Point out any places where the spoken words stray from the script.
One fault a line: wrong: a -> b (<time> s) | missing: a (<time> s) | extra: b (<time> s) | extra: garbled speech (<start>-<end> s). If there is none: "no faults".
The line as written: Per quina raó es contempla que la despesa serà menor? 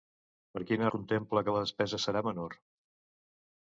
missing: raó es (0.9 s)